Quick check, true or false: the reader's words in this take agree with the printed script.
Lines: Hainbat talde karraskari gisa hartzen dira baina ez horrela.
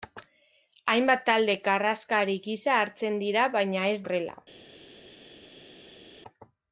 true